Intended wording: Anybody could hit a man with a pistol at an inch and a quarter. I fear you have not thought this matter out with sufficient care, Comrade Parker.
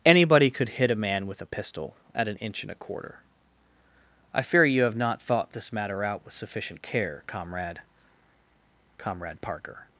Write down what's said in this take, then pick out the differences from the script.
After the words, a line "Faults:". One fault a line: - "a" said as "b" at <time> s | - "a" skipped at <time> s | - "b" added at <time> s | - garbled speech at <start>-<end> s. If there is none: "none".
Anybody could hit a man with a pistol at an inch and a quarter. I fear you have not thought this matter out with sufficient care, Comrade Comrade Parker.
Faults:
- "Comrade" added at 9.0 s